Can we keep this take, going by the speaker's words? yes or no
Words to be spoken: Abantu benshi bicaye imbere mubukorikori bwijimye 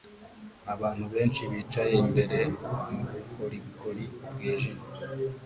yes